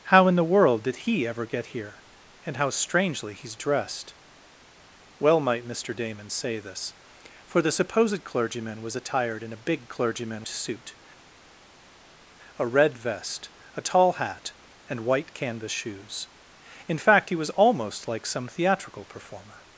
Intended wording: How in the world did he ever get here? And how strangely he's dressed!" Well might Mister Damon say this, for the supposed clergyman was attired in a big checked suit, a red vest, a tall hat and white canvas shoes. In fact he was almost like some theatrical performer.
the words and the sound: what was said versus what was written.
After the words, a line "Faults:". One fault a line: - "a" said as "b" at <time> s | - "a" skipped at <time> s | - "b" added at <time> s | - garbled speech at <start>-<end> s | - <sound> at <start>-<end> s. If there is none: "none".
How in the world did he ever get here? And how strangely he's dressed!" Well might Mister Damon say this, for the supposed clergyman was attired in a big clergyman suit, a red vest, a tall hat and white canvas shoes. In fact he was almost like some theatrical performer.
Faults:
- "checked" said as "clergyman" at 9.9 s